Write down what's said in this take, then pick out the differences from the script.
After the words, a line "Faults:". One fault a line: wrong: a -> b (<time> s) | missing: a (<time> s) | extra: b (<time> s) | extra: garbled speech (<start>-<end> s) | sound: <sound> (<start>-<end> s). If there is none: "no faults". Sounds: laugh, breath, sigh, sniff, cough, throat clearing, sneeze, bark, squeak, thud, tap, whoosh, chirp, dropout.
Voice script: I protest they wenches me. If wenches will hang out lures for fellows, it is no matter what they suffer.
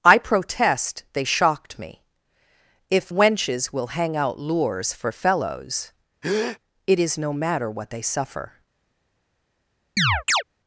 I protest they shocked me. If wenches will hang out lures for fellows, it is no matter what they suffer.
Faults:
wrong: wenches -> shocked (1.2 s)
sound: breath (6.2-6.6 s)
sound: chirp (10.0-10.4 s)